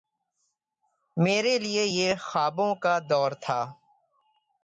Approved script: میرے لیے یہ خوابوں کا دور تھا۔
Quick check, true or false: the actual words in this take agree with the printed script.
true